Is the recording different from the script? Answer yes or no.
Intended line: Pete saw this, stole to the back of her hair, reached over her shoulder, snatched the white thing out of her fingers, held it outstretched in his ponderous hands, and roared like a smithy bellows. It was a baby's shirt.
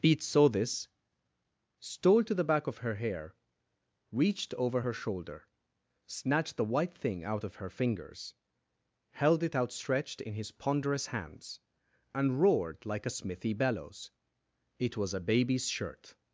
no